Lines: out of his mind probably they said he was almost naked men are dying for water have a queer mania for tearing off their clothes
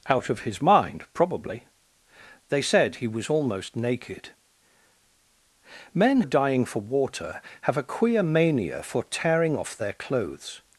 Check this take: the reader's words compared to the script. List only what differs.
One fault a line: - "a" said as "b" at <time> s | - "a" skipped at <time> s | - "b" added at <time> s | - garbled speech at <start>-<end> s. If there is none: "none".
none